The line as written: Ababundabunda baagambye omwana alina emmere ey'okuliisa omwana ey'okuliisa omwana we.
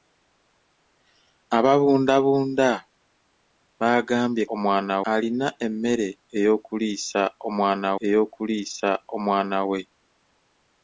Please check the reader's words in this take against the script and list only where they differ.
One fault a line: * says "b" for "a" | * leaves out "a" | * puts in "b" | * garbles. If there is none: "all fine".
all fine